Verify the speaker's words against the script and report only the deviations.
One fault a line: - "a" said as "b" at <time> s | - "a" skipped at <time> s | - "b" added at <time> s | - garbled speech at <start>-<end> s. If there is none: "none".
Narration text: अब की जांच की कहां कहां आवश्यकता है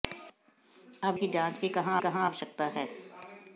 none